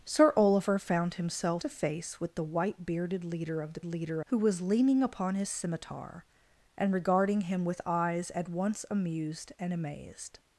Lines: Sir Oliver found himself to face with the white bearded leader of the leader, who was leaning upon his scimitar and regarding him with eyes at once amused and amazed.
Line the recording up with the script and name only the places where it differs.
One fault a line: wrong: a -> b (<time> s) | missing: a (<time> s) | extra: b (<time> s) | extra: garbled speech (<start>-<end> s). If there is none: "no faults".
no faults